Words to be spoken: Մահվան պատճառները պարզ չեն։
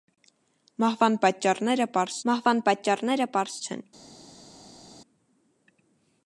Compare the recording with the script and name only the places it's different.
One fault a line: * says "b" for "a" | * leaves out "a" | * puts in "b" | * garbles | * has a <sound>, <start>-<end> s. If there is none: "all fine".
* puts in "մահվան պատճառները պարզ"